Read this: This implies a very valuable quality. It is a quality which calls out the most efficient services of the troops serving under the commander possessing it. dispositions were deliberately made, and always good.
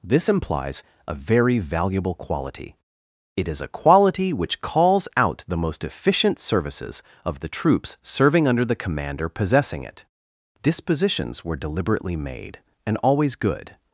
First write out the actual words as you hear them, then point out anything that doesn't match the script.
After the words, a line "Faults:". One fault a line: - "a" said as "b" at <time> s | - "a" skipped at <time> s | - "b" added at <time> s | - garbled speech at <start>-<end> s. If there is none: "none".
This implies a very valuable quality. It is a quality which calls out the most efficient services of the troops serving under the commander possessing it. dispositions were deliberately made, and always good.
Faults:
none